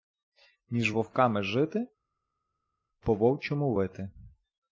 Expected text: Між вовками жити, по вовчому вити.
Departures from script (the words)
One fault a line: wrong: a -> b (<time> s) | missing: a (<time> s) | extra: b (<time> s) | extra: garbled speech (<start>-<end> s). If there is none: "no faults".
no faults